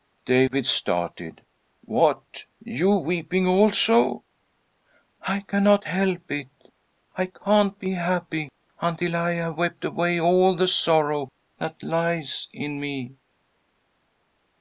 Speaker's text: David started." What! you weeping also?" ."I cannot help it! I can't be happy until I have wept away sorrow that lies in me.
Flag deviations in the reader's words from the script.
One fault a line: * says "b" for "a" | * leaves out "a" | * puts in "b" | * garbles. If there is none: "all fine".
* puts in "all the"